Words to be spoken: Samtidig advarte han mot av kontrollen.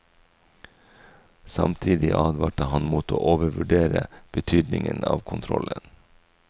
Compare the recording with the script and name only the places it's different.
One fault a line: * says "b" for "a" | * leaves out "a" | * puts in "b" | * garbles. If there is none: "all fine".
* puts in "å overvurdere betydningen"